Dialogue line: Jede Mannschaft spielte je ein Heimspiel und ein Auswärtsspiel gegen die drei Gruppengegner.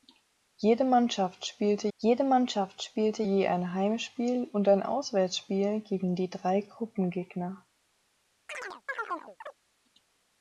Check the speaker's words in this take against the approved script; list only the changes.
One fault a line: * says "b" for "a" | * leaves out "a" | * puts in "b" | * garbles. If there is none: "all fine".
* puts in "jede Mannschaft spielte"